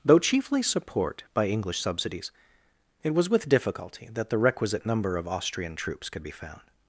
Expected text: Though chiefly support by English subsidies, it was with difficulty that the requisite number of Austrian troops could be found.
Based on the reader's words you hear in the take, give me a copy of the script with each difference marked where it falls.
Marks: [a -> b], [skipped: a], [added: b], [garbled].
Though chiefly support by English subsidies, it was with difficulty that the requisite number of Austrian troops could be found.